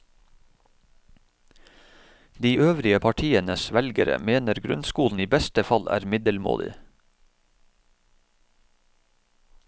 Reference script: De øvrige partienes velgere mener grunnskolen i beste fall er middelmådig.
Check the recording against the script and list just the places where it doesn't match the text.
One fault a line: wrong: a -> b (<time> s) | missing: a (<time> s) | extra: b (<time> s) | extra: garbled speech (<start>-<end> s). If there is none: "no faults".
no faults